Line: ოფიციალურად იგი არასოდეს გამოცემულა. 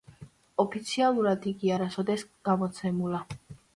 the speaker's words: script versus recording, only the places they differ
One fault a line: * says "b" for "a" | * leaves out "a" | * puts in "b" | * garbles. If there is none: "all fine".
all fine